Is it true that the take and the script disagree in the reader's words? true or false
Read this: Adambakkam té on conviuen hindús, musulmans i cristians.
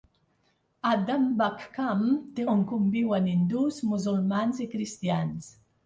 false